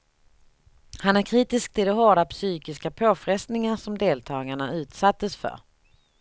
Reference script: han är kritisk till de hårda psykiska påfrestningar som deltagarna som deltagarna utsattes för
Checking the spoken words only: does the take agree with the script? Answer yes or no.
no